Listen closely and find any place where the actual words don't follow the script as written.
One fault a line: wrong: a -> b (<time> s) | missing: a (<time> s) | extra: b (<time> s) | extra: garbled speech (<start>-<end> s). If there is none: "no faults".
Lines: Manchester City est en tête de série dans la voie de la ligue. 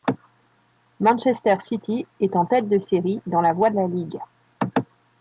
no faults